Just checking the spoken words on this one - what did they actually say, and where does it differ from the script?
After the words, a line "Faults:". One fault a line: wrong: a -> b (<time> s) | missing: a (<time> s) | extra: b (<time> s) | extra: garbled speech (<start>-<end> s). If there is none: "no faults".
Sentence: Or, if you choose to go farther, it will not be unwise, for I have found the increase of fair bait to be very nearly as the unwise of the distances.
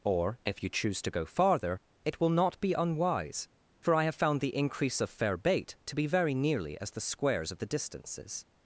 Or, if you choose to go farther, it will not be unwise, for I have found the increase of fair bait to be very nearly as the squares of the distances.
Faults:
wrong: unwise -> squares (7.0 s)